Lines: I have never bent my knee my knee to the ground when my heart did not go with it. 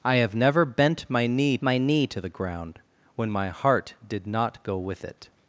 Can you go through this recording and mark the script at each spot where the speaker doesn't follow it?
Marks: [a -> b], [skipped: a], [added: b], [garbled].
I have never bent my knee my knee to the ground when my heart did not go with it.